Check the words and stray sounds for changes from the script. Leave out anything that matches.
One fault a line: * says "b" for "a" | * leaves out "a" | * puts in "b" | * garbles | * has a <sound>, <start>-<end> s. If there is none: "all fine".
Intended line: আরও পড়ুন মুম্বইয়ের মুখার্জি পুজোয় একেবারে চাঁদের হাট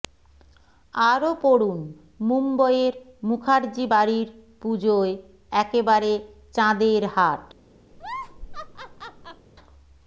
* puts in "বাড়ির"
* has a laugh, 7.9-9.5 s